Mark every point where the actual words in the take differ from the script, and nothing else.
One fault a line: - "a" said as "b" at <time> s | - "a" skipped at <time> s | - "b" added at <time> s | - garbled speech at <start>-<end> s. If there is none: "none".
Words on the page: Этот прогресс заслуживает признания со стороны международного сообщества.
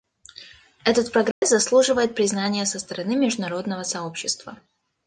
none